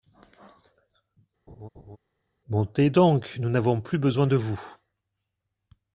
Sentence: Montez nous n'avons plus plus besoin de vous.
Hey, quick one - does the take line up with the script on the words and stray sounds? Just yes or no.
no